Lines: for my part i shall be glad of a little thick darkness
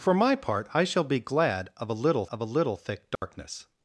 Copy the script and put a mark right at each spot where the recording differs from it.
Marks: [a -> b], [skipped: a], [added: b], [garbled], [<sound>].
for my part i shall be glad of a little [added: of a little] thick darkness [dropout]